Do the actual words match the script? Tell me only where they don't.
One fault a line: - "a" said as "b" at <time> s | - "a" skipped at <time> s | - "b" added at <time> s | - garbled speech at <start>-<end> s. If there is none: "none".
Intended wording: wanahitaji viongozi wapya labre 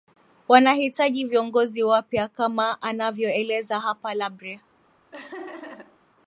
- "kama anavyoeleza hapa" added at 2.3 s